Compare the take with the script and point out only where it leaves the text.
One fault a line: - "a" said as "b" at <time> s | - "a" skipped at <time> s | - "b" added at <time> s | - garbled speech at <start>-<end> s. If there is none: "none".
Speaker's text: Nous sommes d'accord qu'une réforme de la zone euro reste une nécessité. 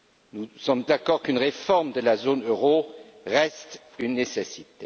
none